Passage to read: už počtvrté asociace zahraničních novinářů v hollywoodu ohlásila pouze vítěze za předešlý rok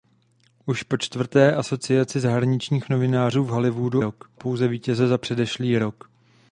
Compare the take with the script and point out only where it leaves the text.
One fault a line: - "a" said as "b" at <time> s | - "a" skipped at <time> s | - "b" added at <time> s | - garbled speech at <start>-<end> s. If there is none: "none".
- "ohlásila" said as "rok" at 4.0 s